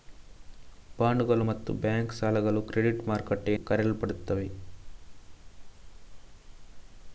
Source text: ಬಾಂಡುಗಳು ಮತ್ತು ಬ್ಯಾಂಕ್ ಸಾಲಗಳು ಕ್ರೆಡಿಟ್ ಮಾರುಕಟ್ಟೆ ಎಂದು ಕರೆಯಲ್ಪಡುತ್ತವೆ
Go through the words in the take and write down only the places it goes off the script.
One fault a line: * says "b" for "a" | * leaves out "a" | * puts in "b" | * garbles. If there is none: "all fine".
* leaves out "ಎಂದು"